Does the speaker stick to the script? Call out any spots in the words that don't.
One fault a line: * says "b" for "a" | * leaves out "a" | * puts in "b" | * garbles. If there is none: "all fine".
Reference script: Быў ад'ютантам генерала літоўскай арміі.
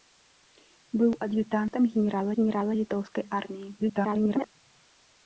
* puts in "генерала"
* garbles